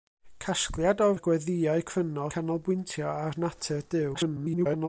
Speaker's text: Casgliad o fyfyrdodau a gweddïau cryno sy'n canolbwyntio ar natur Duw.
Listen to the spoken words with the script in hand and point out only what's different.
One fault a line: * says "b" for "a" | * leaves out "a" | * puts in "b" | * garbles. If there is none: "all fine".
* leaves out "fyfyrdodau"
* leaves out "sy'n"
* garbles